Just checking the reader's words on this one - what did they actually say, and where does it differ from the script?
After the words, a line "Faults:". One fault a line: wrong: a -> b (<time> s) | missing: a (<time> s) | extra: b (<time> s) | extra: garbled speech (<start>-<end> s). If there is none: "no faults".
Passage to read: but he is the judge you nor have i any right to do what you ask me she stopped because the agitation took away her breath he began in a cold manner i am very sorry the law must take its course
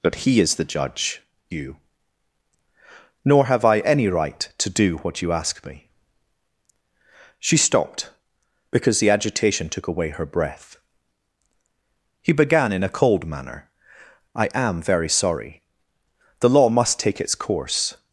but he is the judge you nor have i any right to do what you ask me she stopped because the agitation took away her breath he began in a cold manner i am very sorry the law must take its course
Faults:
no faults